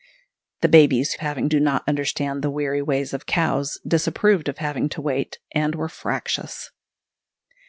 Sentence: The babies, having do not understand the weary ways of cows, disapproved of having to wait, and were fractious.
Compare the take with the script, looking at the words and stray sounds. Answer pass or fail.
pass